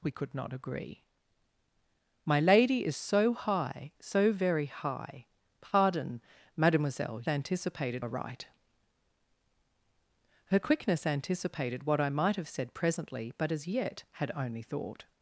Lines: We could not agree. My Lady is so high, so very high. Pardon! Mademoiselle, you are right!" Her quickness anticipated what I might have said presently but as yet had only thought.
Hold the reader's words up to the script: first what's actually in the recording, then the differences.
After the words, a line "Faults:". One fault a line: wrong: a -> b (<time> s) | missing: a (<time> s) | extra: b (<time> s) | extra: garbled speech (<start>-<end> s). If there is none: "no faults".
We could not agree. My Lady is so high, so very high. Pardon! Mademoiselle, anticipated are right!" Her quickness anticipated what I might have said presently but as yet had only thought.
Faults:
wrong: you -> anticipated (7.3 s)